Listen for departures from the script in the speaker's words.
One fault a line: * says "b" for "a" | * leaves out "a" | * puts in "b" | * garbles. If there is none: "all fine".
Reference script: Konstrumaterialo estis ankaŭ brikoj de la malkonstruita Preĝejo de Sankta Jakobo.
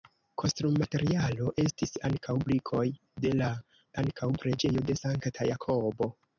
* says "ankaŭ" for "malkonstruita"